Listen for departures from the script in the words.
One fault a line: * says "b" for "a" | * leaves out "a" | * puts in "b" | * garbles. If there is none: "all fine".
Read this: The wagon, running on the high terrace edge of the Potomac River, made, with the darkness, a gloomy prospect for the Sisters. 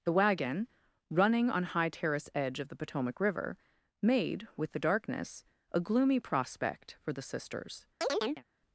* leaves out "the"